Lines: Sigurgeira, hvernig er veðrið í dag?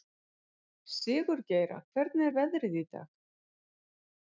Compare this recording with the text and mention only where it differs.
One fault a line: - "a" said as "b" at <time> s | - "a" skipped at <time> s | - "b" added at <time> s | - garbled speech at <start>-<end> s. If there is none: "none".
none